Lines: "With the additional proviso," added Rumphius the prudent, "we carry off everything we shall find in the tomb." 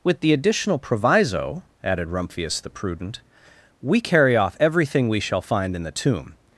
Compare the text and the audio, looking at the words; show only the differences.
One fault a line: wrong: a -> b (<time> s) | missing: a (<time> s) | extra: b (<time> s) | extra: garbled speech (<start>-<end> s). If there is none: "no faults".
no faults